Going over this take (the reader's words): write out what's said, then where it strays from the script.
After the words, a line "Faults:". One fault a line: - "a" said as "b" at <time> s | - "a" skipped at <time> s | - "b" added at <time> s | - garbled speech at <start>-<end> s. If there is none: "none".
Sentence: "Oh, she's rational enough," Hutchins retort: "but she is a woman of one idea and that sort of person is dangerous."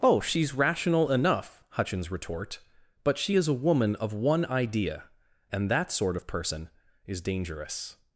"Oh, she's rational enough," Hutchins retort: "but she is a woman of one idea and that sort of person is dangerous."
Faults:
none